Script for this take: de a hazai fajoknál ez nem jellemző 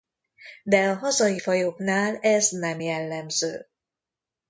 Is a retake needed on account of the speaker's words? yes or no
no